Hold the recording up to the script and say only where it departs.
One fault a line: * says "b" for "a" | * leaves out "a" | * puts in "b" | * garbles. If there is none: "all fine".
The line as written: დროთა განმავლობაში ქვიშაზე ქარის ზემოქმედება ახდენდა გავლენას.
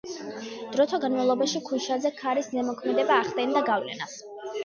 all fine